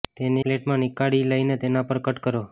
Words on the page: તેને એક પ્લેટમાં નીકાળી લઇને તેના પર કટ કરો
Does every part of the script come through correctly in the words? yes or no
no